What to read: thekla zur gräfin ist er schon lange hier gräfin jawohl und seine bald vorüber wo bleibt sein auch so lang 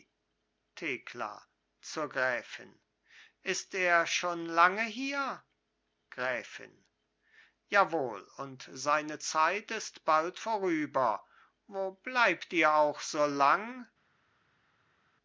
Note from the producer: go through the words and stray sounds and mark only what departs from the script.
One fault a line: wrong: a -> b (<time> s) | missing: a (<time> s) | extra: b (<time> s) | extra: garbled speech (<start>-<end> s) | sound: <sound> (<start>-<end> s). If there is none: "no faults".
extra: zeit ist (9.2 s)
wrong: sein -> ihr (12.5 s)